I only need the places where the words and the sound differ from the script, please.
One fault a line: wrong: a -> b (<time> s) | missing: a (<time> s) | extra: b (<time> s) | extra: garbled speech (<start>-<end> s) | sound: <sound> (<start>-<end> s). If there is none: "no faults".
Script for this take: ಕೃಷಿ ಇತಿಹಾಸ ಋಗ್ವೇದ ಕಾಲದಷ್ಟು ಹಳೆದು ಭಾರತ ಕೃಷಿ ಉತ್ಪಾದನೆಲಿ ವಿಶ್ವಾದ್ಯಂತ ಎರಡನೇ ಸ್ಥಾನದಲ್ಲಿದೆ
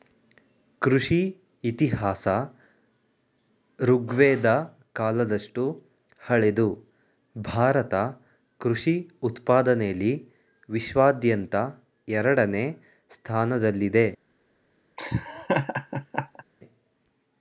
sound: laugh (15.0-16.4 s)